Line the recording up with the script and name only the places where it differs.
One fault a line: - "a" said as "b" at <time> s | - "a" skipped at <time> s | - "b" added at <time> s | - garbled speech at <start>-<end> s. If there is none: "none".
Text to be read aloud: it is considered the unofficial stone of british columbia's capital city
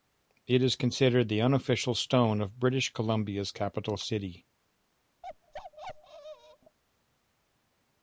none